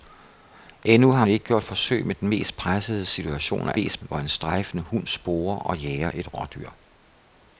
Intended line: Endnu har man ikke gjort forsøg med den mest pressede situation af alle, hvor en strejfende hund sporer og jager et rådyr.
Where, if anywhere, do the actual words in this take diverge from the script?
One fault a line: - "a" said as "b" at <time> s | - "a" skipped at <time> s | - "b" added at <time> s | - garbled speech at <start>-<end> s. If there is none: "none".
- "man" skipped at 1.2 s
- "alle" said as "mest" at 3.7 s